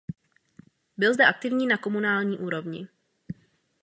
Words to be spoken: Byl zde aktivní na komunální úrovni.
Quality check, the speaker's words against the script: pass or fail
pass